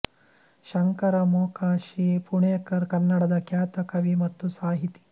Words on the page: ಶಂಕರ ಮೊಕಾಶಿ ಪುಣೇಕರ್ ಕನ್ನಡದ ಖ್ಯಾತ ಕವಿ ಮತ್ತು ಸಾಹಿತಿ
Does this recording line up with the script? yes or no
yes